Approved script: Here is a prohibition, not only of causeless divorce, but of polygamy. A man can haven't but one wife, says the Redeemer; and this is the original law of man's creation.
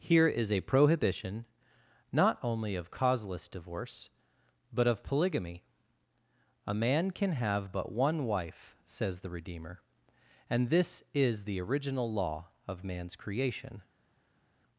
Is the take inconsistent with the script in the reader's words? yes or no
yes